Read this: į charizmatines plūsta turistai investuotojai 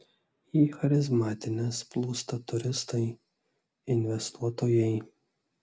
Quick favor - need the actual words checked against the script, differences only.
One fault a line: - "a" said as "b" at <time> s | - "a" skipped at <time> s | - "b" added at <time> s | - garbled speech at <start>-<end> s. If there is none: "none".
none